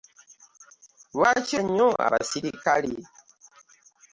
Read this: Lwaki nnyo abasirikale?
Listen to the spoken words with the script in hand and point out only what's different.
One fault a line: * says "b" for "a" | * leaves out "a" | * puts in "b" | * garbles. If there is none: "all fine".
all fine